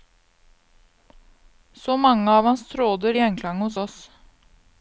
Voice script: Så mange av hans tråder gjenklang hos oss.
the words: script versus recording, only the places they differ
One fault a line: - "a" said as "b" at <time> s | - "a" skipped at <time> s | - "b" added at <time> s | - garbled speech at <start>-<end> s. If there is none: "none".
none